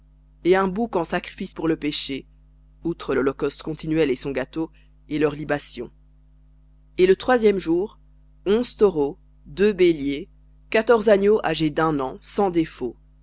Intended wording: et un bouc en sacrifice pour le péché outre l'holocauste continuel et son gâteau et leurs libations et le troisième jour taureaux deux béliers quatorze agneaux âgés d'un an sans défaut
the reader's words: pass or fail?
fail